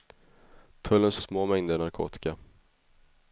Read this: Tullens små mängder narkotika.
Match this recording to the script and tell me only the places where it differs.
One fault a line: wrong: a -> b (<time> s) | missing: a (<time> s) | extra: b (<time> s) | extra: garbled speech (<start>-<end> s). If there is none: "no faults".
no faults